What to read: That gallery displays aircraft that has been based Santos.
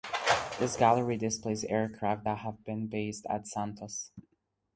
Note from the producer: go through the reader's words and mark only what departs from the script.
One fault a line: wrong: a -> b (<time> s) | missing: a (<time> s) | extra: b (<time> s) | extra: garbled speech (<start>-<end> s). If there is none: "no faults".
wrong: That -> This (0.6 s)
wrong: has -> have (2.4 s)
extra: at (3.3 s)